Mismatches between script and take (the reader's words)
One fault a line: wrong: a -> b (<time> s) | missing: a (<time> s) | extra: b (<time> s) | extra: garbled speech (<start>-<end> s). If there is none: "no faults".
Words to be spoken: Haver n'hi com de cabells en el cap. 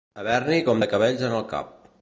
no faults